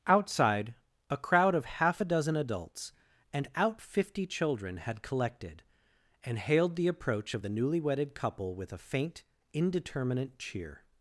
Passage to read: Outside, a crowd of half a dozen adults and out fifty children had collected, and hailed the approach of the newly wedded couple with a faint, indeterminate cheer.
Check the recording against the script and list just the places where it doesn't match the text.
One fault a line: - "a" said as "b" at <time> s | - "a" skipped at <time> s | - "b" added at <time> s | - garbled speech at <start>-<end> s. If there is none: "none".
none